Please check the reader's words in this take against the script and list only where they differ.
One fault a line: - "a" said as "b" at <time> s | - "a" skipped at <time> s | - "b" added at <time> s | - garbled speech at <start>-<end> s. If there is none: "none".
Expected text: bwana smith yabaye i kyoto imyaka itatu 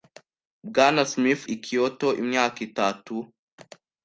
- "yabaye" skipped at 1.4 s